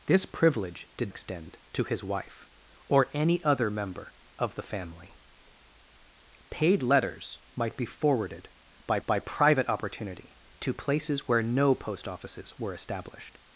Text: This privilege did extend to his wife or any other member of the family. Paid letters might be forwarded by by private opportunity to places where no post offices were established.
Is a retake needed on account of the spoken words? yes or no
no